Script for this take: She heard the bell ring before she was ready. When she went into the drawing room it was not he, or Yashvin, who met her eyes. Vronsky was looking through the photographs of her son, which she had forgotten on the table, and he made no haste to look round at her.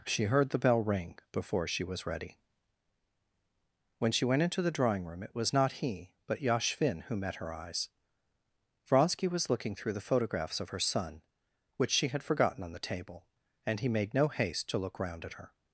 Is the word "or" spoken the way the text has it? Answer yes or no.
no